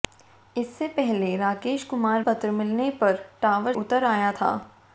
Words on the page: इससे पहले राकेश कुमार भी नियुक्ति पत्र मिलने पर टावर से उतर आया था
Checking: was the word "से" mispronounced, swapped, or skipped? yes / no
yes